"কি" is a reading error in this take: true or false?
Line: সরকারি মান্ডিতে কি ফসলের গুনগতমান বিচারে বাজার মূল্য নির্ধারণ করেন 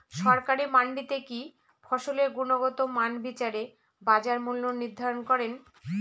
false